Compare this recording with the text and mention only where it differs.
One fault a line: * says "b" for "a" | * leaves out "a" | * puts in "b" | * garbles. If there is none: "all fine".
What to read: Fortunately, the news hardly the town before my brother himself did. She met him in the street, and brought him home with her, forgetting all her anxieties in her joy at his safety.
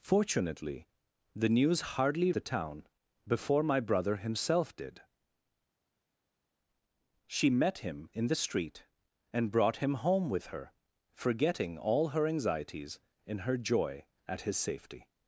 all fine